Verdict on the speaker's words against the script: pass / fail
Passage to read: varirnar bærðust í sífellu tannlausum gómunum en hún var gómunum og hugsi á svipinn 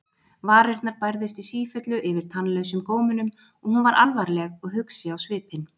fail